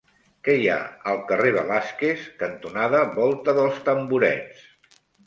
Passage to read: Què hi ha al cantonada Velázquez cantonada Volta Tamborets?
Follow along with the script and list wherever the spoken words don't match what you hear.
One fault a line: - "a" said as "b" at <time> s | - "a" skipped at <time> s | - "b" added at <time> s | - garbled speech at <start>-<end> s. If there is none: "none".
- "cantonada" said as "carrer" at 1.3 s
- "dels" added at 3.6 s